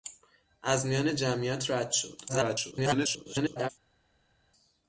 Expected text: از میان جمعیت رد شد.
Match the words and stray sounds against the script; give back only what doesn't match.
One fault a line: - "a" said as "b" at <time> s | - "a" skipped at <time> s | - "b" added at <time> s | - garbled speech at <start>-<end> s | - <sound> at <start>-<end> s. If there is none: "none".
- garbled speech at 2.3-3.7 s